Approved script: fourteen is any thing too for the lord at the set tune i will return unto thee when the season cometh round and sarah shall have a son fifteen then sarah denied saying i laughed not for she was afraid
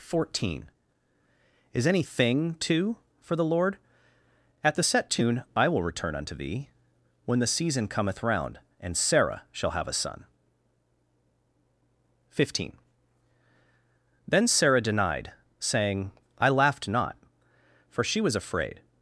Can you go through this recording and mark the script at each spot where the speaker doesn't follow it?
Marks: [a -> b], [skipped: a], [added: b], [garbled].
fourteen is any thing too for the lord at the set tune i will return unto thee when the season cometh round and sarah shall have a son fifteen then sarah denied saying i laughed not for she was afraid